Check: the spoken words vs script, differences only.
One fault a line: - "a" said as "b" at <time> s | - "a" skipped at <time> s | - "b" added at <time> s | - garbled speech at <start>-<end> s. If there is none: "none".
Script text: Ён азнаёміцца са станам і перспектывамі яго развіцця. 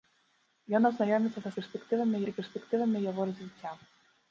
- "станам" said as "перспектывамі" at 1.6 s